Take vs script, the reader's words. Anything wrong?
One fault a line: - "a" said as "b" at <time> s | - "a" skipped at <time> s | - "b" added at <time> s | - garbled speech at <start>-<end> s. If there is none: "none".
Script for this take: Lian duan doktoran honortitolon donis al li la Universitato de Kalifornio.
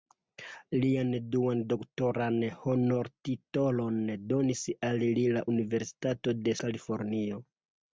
none